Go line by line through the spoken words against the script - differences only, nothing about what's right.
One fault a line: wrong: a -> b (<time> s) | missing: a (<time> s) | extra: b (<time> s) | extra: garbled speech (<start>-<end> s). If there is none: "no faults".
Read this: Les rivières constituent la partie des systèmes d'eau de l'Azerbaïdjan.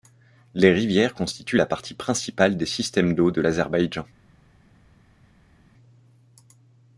extra: principale (1.9 s)